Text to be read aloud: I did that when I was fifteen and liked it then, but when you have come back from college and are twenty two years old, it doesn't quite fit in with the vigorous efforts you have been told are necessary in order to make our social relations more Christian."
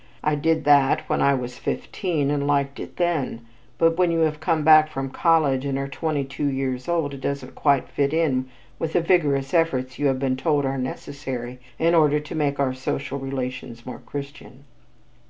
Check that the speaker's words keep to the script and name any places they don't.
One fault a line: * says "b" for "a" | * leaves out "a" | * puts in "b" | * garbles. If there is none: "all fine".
all fine